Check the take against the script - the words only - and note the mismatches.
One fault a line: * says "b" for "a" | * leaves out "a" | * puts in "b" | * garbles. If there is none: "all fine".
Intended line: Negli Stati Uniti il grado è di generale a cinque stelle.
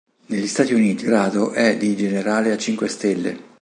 * leaves out "il"